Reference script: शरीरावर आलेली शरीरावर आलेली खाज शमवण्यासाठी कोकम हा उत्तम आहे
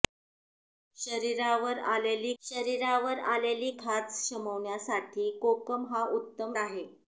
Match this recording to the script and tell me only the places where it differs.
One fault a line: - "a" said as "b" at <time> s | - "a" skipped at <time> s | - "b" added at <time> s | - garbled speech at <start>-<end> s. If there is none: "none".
none